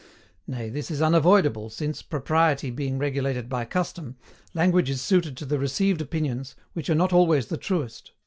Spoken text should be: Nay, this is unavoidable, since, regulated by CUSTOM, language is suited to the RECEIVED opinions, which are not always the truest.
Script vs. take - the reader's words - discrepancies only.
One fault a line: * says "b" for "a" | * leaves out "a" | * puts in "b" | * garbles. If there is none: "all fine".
* puts in "propriety being"